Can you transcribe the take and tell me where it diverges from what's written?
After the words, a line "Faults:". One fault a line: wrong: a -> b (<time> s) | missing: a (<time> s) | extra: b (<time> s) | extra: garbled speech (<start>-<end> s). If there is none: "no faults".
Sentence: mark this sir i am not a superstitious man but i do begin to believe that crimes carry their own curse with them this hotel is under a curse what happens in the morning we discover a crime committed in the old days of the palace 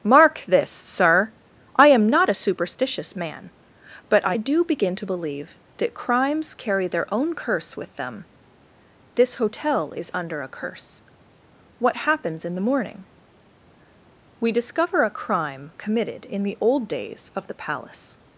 mark this sir i am not a superstitious man but i do begin to believe that crimes carry their own curse with them this hotel is under a curse what happens in the morning we discover a crime committed in the old days of the palace
Faults:
no faults